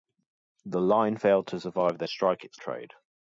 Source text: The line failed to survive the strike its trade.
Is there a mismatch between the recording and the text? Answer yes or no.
no